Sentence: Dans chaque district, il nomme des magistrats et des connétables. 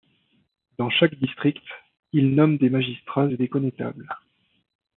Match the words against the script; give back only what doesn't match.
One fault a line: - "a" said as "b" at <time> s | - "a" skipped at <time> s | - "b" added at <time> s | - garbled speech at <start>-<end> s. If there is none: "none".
none